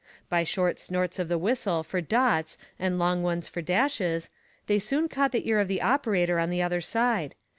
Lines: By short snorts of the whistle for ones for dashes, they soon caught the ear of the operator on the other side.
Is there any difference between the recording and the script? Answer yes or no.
yes